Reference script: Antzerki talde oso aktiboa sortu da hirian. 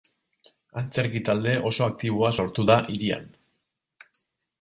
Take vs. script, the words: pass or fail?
pass